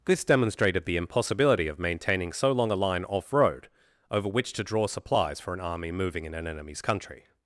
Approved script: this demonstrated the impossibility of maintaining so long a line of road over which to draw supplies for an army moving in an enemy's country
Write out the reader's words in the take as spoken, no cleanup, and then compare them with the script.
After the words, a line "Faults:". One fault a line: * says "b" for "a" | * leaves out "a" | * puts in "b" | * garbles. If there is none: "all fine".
this demonstrated the impossibility of maintaining so long a line off road over which to draw supplies for an army moving in an enemy's country
Faults:
* says "off" for "of"